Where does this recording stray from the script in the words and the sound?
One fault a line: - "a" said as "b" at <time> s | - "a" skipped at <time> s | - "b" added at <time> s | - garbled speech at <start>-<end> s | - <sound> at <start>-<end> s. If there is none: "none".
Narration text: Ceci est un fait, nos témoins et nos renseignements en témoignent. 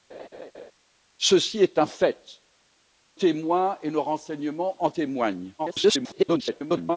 - laugh at 0.1-0.7 s
- "nos" skipped at 2.4 s
- garbled speech at 5.6-7.0 s